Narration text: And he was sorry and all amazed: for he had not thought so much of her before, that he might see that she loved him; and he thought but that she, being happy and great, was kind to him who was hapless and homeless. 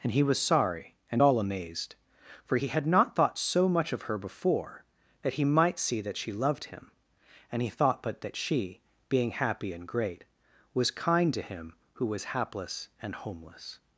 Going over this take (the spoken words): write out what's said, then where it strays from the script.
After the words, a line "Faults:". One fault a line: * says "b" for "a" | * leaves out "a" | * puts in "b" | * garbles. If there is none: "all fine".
And he was sorry and all amazed: for he had not thought so much of her before, that he might see that she loved him; and he thought but that she, being happy and great, was kind to him who was hapless and homeless.
Faults:
all fine